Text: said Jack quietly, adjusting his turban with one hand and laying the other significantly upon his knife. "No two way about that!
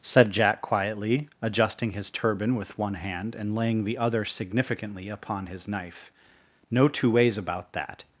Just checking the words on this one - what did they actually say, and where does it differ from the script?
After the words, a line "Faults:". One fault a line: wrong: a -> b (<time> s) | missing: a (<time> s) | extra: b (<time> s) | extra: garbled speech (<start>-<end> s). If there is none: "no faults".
said Jack quietly, adjusting his turban with one hand and laying the other significantly upon his knife. "No two ways about that!
Faults:
wrong: way -> ways (7.1 s)